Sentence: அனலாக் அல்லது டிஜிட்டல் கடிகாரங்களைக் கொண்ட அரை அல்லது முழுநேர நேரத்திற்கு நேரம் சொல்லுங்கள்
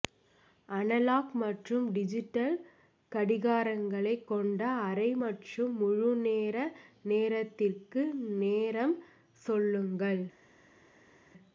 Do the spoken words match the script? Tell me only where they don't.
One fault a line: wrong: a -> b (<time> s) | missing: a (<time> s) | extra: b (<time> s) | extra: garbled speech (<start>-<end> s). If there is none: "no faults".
wrong: அல்லது -> மற்றும் (1.4 s)
wrong: அல்லது -> மற்றும் (5.2 s)